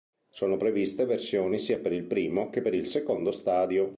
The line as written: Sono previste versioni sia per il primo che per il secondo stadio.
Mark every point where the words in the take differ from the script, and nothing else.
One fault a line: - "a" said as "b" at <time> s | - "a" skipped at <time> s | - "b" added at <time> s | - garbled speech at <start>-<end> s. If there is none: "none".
none